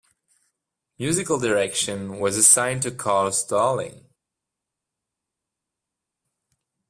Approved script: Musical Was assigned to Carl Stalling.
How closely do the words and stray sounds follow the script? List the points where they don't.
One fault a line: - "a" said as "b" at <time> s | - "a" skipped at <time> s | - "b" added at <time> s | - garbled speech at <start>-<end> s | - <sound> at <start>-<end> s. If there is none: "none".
- "Direction" added at 1.4 s